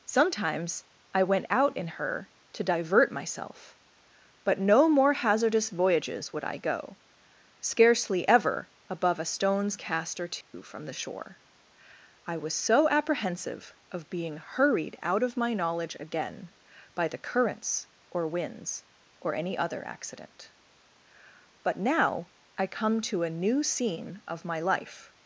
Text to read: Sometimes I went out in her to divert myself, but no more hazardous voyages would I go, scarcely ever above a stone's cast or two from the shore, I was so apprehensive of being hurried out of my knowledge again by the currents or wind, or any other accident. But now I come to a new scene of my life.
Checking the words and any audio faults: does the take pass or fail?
fail